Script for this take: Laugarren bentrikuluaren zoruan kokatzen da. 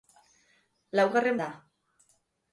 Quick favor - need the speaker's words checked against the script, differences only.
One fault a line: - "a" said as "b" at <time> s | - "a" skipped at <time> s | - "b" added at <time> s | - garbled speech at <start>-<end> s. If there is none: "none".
- "bentrikuluaren zoruan kokatzen" skipped at 1.4 s